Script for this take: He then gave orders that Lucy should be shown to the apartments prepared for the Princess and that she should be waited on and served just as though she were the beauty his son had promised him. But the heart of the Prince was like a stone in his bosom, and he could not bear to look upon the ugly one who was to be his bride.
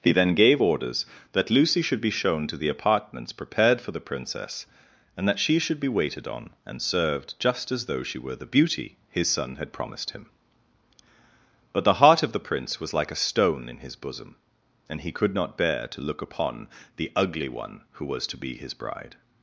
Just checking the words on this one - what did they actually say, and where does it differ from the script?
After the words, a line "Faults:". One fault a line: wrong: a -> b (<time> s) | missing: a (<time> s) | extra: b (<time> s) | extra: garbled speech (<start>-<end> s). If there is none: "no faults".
He then gave orders that Lucy should be shown to the apartments prepared for the Princess and that she should be waited on and served just as though she were the beauty his son had promised him. But the heart of the Prince was like a stone in his bosom, and he could not bear to look upon the ugly one who was to be his bride.
Faults:
no faults